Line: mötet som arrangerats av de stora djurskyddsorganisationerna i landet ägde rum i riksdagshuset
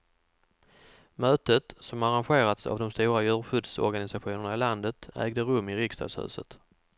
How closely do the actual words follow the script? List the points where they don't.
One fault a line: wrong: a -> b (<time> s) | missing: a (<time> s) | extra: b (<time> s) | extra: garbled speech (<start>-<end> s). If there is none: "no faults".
no faults